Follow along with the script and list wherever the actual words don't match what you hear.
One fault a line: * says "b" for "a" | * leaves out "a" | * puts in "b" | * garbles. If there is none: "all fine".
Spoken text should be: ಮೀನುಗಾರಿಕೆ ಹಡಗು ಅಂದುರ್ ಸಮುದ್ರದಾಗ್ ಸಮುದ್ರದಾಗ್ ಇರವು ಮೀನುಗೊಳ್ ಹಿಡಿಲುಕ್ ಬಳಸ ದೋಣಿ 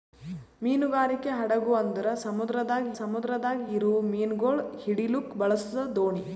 all fine